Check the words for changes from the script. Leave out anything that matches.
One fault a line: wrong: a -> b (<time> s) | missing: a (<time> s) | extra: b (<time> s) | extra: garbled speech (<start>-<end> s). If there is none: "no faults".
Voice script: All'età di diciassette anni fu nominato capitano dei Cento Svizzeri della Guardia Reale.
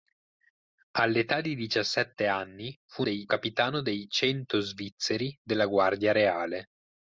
wrong: nominato -> dei (3.0 s)